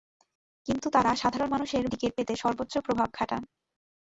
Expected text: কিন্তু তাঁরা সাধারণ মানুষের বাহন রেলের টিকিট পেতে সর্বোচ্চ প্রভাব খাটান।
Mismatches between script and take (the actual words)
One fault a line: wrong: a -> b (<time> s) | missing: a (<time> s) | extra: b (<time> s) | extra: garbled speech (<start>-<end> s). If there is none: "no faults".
missing: বাহন রেলের (1.8 s)